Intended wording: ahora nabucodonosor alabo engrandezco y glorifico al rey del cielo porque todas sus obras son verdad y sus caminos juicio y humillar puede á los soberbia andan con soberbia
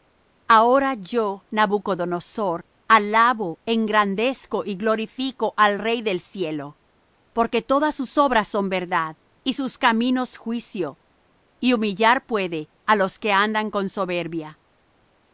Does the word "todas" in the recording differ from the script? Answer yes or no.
no